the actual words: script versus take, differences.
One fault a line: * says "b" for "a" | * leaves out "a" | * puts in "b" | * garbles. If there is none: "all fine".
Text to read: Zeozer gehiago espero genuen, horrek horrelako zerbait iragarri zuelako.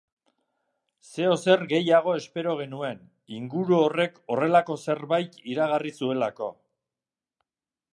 * puts in "inguru"